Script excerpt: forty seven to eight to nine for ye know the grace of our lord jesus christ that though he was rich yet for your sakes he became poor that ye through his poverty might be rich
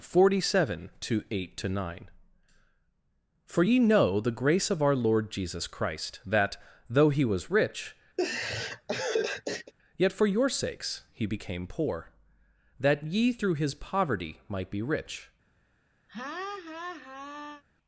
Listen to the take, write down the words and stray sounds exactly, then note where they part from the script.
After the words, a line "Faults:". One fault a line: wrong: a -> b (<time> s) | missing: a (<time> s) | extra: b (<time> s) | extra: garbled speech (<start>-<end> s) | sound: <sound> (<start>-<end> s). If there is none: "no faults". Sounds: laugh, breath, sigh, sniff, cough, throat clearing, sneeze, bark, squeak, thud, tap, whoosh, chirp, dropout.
forty seven to eight to nine for ye know the grace of our lord jesus christ that though he was rich yet for your sakes he became poor that ye through his poverty might be rich
Faults:
sound: laugh (8.2-9.7 s)
sound: laugh (16.1-17.6 s)